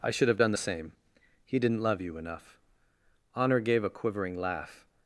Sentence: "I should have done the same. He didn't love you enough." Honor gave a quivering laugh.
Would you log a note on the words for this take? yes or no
no